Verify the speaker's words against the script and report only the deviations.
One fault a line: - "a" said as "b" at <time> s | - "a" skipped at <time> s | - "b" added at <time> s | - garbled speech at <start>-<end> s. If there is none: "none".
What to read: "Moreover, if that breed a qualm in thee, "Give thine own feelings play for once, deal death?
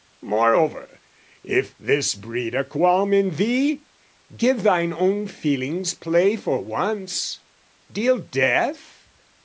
- "that" said as "this" at 1.8 s